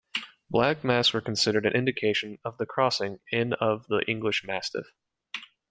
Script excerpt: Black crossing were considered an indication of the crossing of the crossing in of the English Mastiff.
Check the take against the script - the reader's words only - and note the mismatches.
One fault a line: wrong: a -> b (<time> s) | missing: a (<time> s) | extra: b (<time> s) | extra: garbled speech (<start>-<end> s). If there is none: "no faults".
wrong: crossing -> masks (0.8 s)
missing: of the crossing (3.2 s)